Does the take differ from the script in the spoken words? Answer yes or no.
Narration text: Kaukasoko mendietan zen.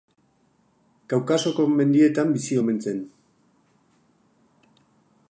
yes